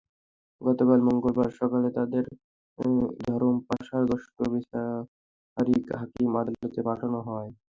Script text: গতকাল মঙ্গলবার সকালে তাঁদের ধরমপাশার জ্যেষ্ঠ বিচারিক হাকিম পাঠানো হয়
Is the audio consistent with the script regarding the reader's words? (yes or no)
no